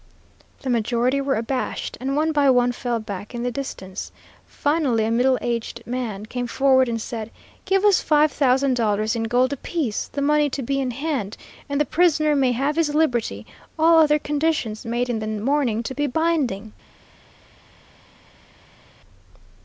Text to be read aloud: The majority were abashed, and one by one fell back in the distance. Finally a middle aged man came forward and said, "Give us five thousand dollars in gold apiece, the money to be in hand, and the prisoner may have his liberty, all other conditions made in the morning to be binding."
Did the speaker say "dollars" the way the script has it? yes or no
yes